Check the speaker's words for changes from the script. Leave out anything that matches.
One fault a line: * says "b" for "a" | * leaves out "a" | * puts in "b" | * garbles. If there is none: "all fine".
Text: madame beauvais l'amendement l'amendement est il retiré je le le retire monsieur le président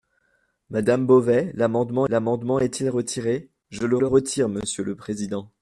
all fine